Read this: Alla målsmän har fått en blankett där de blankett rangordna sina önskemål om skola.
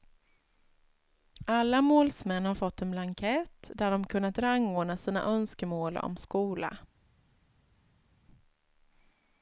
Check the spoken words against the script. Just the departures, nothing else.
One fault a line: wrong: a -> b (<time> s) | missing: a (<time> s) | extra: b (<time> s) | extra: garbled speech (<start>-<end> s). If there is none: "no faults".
wrong: blankett -> kunnat (4.1 s)